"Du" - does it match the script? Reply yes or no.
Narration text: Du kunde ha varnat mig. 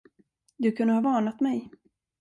yes